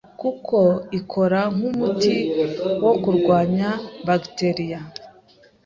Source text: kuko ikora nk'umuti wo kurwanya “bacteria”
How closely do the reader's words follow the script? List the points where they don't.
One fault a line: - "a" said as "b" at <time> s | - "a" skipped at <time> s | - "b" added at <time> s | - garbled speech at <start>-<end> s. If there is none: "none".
none